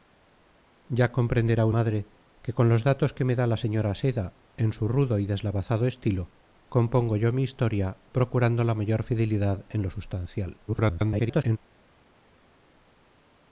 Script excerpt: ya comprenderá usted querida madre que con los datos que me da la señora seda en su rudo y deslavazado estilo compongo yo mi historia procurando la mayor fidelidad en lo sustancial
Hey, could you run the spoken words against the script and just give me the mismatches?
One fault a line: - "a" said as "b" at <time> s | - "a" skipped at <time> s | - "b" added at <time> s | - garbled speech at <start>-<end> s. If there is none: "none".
- "usted querida" skipped at 1.6 s
- garbled speech at 10.7-11.6 s